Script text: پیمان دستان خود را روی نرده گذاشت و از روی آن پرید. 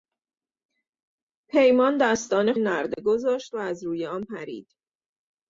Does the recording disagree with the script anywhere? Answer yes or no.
yes